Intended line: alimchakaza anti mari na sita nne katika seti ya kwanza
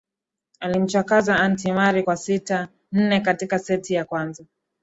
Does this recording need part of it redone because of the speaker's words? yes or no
yes